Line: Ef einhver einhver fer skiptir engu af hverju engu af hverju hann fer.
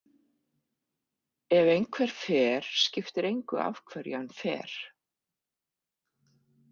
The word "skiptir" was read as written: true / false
true